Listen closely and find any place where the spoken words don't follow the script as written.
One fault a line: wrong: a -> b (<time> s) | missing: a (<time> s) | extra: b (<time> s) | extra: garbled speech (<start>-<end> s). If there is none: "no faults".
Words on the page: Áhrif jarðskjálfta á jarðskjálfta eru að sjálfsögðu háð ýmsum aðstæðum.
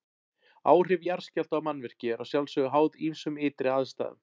wrong: jarðskjálfta -> mannvirki (1.7 s)
extra: ytri (3.5 s)